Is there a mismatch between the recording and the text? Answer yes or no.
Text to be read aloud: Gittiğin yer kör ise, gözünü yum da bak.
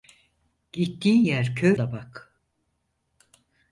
yes